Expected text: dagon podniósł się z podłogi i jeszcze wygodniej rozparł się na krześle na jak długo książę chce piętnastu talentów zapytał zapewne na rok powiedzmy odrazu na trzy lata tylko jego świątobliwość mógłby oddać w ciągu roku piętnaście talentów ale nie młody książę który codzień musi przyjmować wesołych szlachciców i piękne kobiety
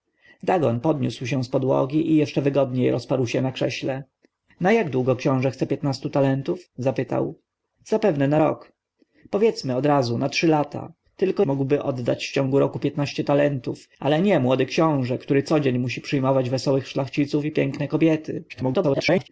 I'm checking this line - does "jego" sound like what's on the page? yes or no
no